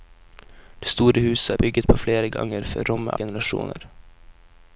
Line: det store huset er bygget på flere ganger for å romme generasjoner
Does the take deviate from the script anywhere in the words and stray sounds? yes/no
no